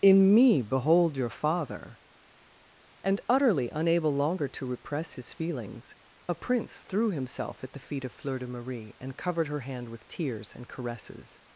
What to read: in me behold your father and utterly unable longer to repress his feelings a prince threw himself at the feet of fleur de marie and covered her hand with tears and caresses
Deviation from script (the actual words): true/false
false